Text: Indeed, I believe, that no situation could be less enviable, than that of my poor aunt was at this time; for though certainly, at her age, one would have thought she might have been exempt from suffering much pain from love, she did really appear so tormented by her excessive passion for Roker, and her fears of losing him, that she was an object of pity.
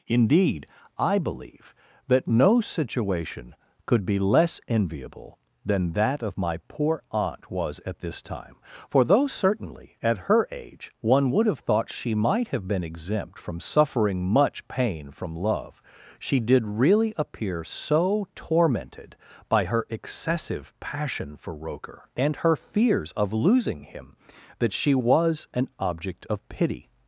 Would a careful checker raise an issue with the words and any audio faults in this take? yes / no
no